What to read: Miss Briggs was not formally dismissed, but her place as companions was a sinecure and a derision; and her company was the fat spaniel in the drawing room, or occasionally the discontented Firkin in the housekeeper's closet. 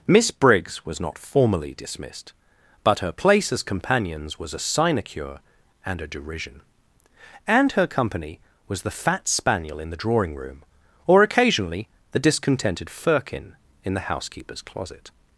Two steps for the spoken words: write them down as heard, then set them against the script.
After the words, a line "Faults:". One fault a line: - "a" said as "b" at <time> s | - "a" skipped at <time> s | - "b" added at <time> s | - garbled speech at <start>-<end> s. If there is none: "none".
Miss Briggs was not formally dismissed, but her place as companions was a sinecure and a derision; and her company was the fat spaniel in the drawing room, or occasionally the discontented Firkin in the housekeeper's closet.
Faults:
none